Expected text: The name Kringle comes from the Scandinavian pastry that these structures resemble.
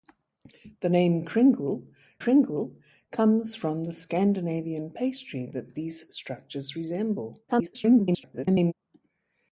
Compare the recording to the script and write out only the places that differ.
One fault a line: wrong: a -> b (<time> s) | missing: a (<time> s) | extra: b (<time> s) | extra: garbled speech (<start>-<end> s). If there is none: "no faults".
extra: Kringle (2.2 s)
extra: garbled speech (7.5-8.7 s)